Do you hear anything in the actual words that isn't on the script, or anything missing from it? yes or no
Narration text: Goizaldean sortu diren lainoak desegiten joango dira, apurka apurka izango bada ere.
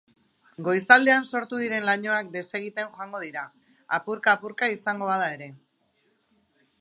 no